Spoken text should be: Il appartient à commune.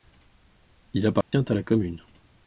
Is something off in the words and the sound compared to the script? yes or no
yes